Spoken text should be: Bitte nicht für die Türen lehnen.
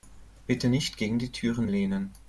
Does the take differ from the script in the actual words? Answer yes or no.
yes